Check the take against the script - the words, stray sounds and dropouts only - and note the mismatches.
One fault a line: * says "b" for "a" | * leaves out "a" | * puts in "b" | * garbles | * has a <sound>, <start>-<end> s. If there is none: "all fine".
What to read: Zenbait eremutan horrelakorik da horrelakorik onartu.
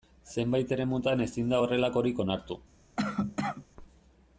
* says "ezin" for "horrelakorik"
* has a cough, 3.0-3.7 s